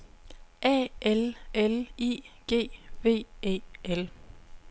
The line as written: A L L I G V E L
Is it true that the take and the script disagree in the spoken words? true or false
false